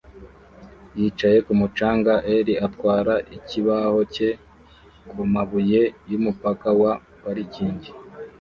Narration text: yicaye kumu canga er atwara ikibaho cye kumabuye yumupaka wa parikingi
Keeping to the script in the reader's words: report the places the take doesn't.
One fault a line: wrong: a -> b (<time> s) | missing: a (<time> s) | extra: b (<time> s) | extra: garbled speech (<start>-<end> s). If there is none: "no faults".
no faults